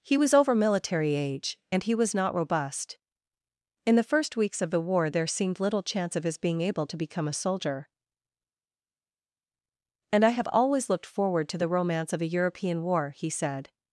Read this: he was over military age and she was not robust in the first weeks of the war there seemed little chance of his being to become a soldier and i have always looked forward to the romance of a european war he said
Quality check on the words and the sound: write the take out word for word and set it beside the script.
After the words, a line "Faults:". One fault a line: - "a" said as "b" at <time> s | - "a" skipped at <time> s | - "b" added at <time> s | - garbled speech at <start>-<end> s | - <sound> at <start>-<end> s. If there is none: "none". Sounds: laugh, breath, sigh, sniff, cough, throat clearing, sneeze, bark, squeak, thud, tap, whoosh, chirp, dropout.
he was over military age and he was not robust in the first weeks of the war there seemed little chance of his being able to become a soldier and i have always looked forward to the romance of a european war he said
Faults:
- "she" said as "he" at 1.8 s
- "able" added at 6.6 s